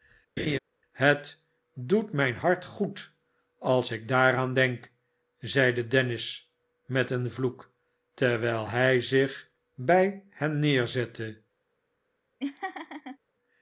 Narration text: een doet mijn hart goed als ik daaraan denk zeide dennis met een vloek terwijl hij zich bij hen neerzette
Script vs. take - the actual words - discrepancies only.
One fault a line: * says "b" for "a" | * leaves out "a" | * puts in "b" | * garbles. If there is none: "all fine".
* says "het" for "een"